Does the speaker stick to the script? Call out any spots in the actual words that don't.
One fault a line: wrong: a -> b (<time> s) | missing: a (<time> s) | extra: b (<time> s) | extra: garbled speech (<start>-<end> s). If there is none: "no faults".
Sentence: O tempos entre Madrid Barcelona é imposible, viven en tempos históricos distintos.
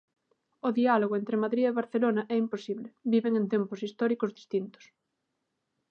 wrong: tempos -> diálogo (0.8 s)
extra: e (1.7 s)